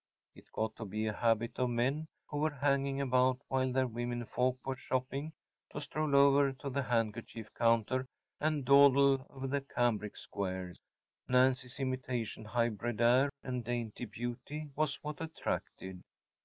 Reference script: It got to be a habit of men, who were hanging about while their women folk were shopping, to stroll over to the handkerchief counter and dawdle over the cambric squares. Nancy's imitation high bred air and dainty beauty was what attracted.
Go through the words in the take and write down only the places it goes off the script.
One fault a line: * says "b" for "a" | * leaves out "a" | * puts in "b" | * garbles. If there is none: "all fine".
all fine